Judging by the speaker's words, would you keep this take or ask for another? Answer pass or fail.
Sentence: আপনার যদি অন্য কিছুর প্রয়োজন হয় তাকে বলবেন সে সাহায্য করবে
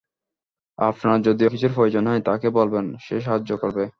fail